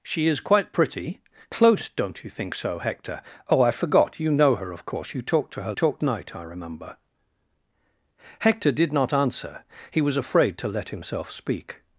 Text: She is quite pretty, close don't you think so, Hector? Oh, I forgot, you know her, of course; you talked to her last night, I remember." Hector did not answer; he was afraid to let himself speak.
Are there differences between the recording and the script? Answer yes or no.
yes